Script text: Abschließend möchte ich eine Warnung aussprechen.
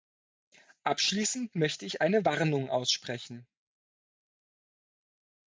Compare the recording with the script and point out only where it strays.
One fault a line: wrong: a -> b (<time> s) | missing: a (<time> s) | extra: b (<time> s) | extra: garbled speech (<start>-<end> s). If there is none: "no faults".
no faults